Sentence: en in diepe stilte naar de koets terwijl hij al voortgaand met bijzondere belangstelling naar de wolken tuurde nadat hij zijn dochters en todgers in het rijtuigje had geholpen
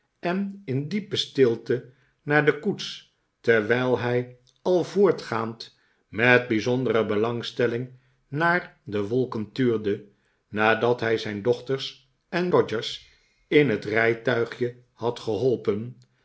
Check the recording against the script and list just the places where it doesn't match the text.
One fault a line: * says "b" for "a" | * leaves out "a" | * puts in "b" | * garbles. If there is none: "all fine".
all fine